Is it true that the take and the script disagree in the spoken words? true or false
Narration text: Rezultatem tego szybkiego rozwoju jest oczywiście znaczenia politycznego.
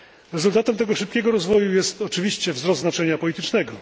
true